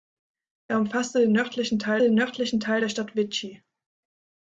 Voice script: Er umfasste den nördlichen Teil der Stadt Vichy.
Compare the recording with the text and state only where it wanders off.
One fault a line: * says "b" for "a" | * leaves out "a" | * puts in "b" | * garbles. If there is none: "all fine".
* puts in "den nördlichen Teil"